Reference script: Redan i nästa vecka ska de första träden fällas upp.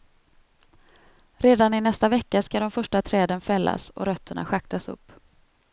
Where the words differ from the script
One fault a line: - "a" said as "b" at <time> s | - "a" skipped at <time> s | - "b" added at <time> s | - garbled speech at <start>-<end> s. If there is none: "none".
- "och rötterna schaktas" added at 3.9 s